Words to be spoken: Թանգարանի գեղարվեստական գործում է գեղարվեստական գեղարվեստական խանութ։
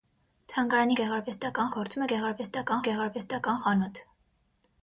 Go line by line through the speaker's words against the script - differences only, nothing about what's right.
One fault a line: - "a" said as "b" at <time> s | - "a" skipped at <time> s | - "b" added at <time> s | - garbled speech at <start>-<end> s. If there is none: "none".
none